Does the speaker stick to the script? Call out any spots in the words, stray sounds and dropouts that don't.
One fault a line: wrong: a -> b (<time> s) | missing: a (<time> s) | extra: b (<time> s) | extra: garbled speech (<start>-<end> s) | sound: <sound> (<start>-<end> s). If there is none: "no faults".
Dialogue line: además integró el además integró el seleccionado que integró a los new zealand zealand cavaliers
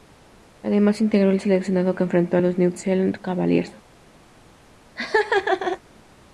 missing: además integró el (1.4 s)
wrong: integró -> enfrentó (2.0 s)
missing: zealand (3.2 s)
sound: laugh (5.0-5.8 s)